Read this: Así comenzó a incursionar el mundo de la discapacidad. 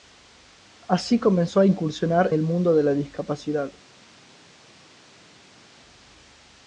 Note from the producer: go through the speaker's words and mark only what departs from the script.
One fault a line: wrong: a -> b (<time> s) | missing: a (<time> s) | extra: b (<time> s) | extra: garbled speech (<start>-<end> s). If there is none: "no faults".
no faults